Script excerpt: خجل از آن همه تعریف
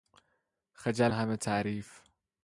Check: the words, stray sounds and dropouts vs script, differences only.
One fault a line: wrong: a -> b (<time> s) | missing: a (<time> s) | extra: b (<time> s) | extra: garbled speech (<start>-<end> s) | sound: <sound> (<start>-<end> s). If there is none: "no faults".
missing: از آن (1.1 s)